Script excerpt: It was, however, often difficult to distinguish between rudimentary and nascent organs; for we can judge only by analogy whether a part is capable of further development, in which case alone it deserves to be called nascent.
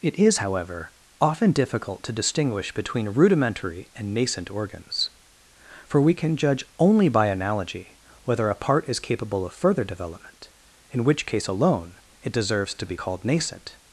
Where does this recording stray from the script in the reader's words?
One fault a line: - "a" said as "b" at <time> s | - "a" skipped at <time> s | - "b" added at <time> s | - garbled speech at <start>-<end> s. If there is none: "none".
- "was" said as "is" at 0.2 s